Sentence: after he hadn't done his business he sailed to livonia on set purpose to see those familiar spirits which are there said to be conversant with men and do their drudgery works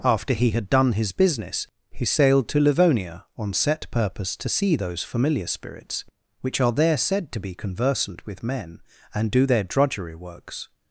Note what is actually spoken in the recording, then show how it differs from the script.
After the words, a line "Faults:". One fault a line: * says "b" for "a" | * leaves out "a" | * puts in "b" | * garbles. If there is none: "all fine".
after he had done his business he sailed to livonia on set purpose to see those familiar spirits which are there said to be conversant with men and do their drudgery works
Faults:
* says "had" for "hadn't"